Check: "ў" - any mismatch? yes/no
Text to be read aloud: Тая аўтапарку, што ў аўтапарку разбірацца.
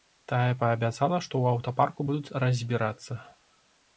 no